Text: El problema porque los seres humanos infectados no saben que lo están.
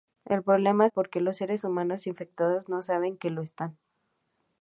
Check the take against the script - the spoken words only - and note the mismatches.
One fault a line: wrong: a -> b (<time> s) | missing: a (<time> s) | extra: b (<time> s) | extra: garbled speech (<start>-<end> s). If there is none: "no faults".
no faults